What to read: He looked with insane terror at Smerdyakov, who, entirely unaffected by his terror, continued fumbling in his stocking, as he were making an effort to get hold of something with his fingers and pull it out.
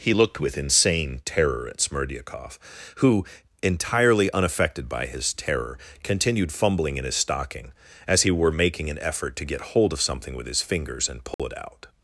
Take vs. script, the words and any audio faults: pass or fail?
fail